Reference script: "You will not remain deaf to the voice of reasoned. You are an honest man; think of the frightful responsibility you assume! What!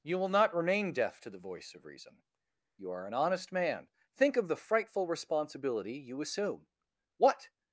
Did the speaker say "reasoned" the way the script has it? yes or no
no